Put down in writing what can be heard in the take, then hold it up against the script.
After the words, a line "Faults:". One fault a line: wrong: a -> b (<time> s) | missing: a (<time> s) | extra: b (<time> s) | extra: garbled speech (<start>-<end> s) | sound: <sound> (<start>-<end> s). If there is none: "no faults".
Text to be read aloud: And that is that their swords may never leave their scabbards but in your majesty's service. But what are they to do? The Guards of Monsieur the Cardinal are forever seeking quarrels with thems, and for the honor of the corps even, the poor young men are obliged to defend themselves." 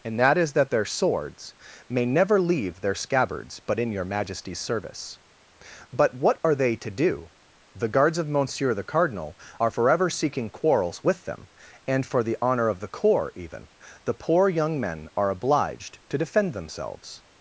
And that is that their swords may never leave their scabbards but in your majesty's service. But what are they to do? The Guards of Monsieur the Cardinal are forever seeking quarrels with them, and for the honor of the corps even, the poor young men are obliged to defend themselves."
Faults:
wrong: thems -> them (11.2 s)